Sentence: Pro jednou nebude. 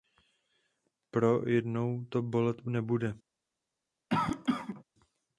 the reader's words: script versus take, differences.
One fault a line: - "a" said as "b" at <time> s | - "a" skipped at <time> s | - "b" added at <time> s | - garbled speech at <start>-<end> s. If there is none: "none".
- "to bolet" added at 2.1 s